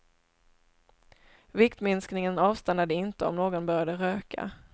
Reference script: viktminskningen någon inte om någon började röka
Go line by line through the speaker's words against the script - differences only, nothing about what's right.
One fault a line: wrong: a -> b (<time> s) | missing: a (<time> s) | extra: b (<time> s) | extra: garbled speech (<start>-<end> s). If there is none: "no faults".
wrong: någon -> avstannade (2.4 s)